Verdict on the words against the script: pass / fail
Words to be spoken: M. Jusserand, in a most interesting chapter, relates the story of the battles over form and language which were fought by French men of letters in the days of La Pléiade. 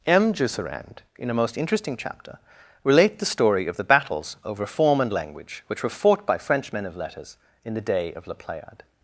fail